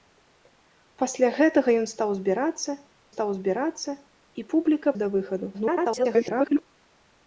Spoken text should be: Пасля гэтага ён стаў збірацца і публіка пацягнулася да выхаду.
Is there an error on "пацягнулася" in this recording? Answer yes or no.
yes